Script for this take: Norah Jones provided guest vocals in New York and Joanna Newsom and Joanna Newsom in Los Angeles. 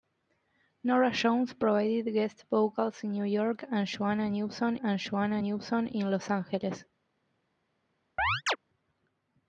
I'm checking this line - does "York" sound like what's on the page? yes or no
yes